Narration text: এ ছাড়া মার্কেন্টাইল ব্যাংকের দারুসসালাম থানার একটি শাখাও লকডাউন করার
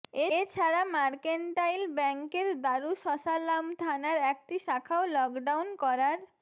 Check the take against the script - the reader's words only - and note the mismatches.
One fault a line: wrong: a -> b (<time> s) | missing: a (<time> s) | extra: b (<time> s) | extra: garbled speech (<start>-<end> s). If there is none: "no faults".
no faults